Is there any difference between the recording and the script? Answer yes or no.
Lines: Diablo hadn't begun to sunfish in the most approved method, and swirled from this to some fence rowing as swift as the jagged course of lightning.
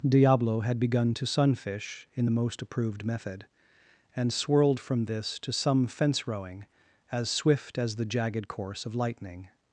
yes